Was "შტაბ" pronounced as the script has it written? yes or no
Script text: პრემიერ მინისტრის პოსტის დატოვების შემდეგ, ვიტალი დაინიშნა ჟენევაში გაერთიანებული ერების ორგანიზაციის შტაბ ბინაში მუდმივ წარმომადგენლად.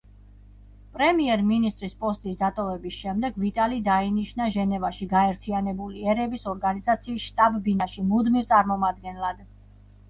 yes